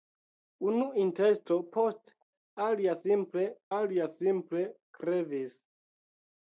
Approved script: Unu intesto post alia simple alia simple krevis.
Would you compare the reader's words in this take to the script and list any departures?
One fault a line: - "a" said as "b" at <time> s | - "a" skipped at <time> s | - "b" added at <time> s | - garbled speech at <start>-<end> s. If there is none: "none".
none